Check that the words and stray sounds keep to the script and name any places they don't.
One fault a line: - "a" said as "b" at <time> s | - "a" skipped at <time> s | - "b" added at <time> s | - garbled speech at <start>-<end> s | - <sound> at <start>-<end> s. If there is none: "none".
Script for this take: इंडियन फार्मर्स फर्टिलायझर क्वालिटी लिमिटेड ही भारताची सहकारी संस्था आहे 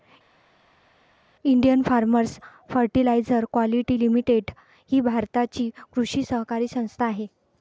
- "कृषी" added at 5.9 s